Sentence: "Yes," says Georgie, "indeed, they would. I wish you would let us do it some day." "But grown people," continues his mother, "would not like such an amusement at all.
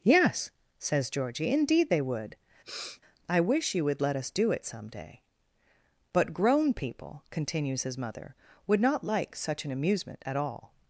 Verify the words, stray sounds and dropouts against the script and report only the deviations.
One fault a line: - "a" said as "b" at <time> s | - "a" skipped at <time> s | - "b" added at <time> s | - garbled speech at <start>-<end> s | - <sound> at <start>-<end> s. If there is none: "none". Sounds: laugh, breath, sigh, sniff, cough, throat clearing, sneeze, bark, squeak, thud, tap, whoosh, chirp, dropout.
- sniff at 2.6-3.0 s